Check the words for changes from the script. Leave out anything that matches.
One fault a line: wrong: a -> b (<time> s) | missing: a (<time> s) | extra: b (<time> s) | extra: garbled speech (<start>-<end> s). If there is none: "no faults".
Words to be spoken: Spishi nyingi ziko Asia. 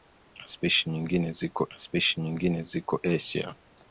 extra: spishi nyingi ziko (1.8 s)